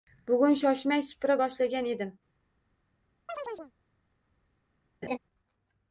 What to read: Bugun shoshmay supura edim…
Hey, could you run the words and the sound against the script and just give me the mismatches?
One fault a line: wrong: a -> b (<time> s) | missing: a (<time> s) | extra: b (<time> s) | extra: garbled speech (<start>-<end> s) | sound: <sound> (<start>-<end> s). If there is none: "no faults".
extra: boshlagan (1.4 s)
sound: chirp (3.3-3.7 s)
sound: laugh (5.0-5.2 s)